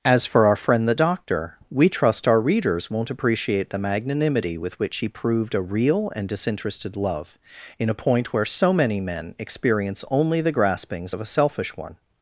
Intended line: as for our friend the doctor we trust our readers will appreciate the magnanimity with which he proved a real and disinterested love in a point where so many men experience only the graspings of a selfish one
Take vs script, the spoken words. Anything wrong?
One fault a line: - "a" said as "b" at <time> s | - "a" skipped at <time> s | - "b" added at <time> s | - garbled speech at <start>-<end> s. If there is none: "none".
- "will" said as "won't" at 2.9 s